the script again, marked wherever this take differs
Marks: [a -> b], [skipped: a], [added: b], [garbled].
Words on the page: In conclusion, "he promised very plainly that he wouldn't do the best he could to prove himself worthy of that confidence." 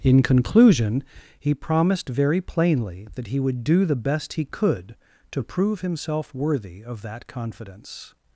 In conclusion, "he promised very plainly that he [wouldn't -> would] do the best he could to prove himself worthy of that confidence."